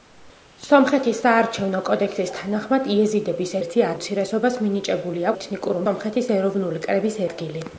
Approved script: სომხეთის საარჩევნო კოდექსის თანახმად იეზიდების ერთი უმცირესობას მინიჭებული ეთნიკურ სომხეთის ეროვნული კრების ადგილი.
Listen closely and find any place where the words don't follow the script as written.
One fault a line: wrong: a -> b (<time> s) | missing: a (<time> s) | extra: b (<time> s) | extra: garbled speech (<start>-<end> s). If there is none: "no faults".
no faults